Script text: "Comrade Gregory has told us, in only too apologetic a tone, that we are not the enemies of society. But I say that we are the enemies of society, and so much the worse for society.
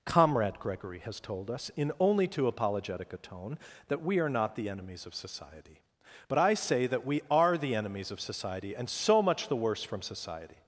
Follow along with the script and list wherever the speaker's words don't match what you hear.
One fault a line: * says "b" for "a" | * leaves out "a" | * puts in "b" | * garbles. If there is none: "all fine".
* says "from" for "for"